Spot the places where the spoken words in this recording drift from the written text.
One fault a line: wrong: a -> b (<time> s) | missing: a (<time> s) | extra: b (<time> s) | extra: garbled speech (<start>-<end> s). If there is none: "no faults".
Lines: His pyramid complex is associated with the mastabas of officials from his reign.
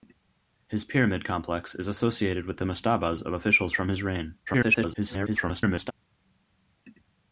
extra: garbled speech (4.5-5.9 s)